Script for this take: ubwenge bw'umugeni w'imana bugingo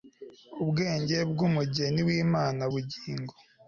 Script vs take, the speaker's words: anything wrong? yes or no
no